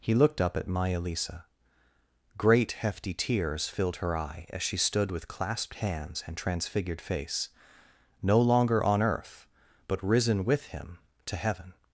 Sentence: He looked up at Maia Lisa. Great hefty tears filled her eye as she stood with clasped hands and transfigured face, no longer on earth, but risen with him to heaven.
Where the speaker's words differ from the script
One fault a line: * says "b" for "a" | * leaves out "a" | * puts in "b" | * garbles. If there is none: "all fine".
all fine